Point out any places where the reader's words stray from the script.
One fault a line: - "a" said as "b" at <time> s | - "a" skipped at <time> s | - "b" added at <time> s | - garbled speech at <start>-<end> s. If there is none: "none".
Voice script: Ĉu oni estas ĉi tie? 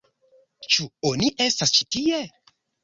none